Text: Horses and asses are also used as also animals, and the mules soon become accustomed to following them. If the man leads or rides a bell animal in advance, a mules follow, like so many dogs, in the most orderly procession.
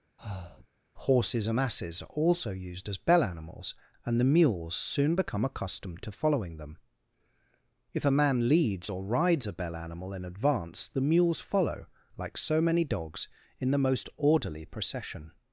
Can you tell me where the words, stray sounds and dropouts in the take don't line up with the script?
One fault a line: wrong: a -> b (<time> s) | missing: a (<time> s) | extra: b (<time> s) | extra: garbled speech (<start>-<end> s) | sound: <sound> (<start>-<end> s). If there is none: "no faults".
sound: breath (0.2-0.7 s)
wrong: also -> bell (3.0 s)
wrong: the -> a (8.0 s)
wrong: a -> the (10.9 s)